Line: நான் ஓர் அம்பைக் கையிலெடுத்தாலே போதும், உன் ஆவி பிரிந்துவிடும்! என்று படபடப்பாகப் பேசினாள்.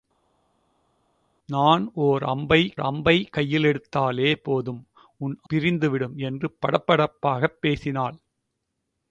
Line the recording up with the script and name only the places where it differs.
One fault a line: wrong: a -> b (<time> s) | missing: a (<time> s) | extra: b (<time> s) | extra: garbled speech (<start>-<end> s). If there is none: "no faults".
extra: அம்பைக் (2.8 s)
missing: ஆவி (5.4 s)